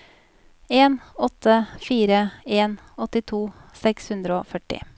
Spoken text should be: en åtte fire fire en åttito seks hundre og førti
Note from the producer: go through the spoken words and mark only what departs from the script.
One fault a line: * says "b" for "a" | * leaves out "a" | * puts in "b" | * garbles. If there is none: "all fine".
* leaves out "fire"